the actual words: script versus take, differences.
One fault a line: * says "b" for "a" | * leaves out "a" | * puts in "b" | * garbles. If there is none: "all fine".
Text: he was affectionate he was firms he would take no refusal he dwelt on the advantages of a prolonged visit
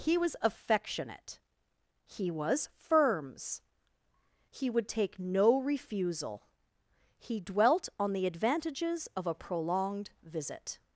all fine